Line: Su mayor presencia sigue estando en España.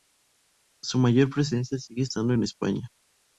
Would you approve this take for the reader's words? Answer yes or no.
yes